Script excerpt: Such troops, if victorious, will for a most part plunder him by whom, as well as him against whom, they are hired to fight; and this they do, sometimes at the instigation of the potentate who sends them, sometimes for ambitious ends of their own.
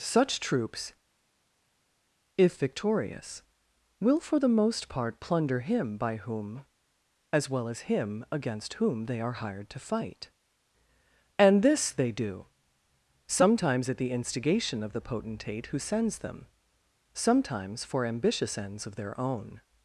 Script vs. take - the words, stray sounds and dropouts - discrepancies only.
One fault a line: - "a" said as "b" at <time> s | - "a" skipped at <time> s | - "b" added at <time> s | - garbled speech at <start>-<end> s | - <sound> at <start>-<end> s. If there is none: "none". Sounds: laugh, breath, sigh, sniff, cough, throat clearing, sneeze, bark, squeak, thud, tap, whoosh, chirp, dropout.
- "a" said as "the" at 4.4 s